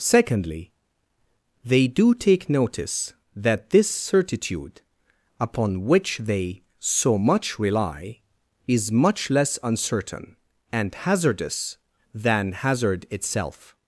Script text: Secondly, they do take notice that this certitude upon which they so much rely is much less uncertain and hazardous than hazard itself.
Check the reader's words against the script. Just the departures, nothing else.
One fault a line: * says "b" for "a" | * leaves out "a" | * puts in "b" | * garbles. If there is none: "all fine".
all fine